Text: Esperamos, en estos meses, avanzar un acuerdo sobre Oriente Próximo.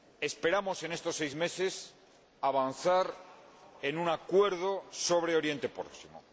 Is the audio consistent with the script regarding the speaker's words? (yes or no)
no